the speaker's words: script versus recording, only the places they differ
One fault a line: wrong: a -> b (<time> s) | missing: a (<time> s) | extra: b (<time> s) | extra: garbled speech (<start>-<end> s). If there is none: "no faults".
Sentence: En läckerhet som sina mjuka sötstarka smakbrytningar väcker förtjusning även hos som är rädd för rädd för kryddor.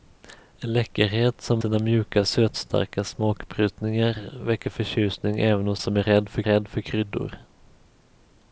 no faults